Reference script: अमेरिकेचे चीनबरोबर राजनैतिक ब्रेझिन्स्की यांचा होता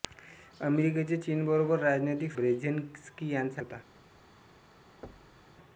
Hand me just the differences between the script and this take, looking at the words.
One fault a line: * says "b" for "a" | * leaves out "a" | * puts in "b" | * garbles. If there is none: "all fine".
all fine